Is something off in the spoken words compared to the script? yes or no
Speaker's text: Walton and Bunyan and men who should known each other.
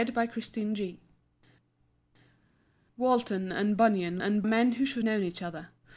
no